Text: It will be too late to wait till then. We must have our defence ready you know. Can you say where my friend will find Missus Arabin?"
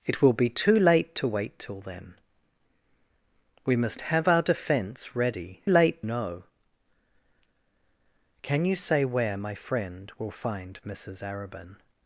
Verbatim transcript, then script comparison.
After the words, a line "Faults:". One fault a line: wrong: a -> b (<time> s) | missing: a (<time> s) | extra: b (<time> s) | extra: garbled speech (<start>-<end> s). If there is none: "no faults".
It will be too late to wait till then. We must have our defence ready late know. Can you say where my friend will find Missus Arabin?"
Faults:
wrong: you -> late (5.6 s)